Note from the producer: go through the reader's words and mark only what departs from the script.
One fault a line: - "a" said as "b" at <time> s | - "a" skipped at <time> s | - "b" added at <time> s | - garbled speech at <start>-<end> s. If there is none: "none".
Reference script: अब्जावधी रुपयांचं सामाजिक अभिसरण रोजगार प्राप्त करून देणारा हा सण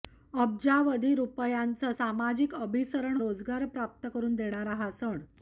none